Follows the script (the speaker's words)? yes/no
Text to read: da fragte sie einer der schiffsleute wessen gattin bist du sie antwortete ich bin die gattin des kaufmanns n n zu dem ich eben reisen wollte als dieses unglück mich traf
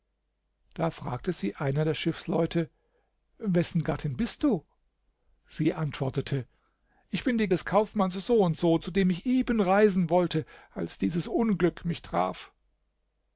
no